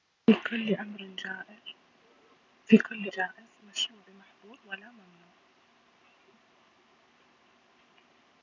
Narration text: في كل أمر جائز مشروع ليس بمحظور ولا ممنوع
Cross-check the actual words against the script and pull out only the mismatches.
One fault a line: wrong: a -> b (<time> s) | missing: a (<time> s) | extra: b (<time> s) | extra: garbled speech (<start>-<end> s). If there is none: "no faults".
missing: أمر (3.1 s)
missing: ليس (4.0 s)